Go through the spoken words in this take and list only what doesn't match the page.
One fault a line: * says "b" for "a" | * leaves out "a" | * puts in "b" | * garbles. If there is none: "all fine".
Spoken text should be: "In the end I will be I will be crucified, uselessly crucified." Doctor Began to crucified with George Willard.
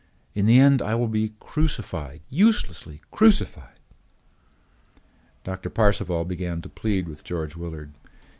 * leaves out "I will be"
* puts in "Parcival"
* says "plead" for "crucified"